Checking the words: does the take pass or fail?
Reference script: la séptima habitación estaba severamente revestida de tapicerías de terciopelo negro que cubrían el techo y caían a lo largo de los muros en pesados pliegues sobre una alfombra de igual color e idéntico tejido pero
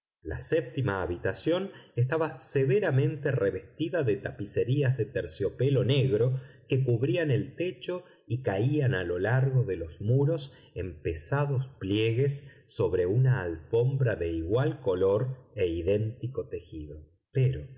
pass